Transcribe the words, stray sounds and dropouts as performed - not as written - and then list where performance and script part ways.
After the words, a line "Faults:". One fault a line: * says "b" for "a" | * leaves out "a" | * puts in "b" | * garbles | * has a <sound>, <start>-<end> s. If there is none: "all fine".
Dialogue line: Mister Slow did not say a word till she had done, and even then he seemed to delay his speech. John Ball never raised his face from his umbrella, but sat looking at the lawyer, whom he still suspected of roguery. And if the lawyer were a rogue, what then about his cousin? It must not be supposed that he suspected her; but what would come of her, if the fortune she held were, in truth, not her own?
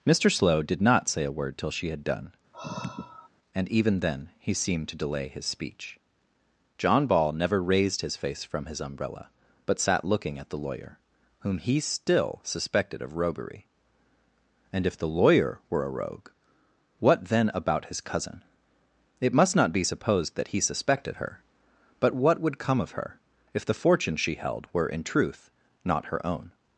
Mister Slow did not say a word till she had done, and even then he seemed to delay his speech. John Ball never raised his face from his umbrella, but sat looking at the lawyer, whom he still suspected of roguery. And if the lawyer were a rogue, what then about his cousin? It must not be supposed that he suspected her; but what would come of her, if the fortune she held were, in truth, not her own?
Faults:
* has a sigh, 2.5-3.3 s